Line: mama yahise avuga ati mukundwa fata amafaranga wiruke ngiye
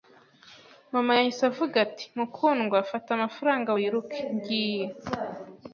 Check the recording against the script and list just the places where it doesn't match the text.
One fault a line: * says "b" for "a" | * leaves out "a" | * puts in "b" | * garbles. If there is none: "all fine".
all fine